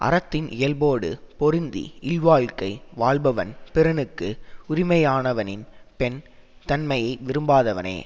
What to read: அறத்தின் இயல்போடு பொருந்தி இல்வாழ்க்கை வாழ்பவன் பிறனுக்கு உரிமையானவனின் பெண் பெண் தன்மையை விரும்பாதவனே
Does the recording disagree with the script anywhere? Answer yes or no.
yes